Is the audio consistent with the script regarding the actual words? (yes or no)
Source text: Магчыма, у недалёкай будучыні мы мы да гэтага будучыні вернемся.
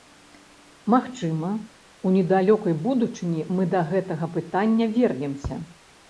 no